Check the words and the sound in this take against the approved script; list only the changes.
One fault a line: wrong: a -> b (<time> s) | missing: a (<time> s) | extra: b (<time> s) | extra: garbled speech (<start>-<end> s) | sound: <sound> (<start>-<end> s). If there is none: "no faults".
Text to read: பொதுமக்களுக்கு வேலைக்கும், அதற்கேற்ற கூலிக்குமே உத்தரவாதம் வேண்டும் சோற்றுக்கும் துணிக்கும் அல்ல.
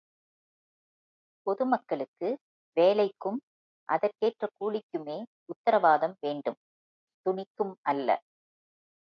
missing: சோற்றுக்கும் (6.6 s)